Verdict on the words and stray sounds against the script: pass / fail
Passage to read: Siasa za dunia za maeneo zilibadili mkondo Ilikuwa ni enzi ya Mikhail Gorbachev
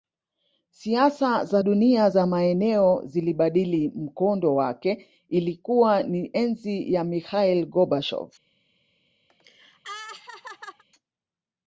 fail